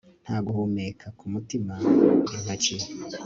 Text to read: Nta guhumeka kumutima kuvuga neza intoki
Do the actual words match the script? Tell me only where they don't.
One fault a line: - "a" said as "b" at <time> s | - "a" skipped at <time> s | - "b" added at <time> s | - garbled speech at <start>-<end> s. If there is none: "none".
- "kuvuga neza" skipped at 1.7 s